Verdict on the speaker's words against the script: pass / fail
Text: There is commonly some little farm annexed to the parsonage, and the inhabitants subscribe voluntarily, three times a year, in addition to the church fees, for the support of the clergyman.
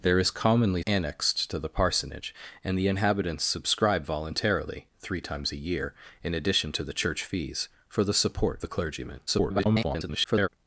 fail